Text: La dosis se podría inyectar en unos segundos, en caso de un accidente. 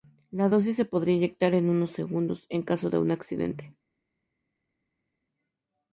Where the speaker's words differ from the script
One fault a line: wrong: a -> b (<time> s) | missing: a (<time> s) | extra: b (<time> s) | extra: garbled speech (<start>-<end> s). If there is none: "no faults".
no faults